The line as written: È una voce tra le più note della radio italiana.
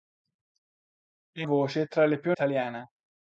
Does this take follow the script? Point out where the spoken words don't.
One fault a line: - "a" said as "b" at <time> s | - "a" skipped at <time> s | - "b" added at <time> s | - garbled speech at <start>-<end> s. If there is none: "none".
- "una" skipped at 1.5 s
- "note della radio" skipped at 2.3 s